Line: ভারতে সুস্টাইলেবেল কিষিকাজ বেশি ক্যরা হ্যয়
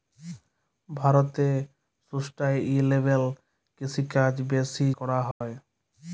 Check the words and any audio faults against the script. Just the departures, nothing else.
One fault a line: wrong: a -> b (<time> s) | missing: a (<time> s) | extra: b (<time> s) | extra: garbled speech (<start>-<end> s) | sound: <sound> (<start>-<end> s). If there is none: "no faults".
sound: dropout (5.3-5.4 s)